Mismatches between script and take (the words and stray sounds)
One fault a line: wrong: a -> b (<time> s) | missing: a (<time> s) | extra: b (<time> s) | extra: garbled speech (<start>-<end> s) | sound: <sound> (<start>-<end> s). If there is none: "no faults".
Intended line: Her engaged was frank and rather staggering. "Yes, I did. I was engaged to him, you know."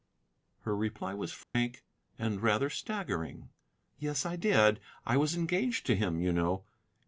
wrong: engaged -> reply (0.8 s)
sound: dropout (1.4-1.5 s)